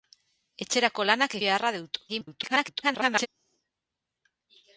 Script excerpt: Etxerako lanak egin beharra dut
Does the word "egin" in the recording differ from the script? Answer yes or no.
yes